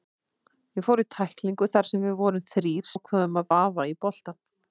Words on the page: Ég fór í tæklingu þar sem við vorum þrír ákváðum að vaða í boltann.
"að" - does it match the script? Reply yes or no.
yes